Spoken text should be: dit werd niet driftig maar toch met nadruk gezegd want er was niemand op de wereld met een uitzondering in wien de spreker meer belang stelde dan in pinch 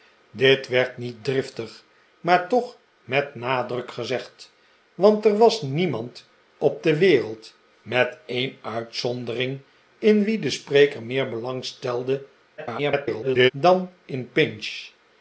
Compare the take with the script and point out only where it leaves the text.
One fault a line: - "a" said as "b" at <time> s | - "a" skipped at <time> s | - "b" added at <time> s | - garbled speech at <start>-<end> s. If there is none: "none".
- garbled speech at 12.6-13.5 s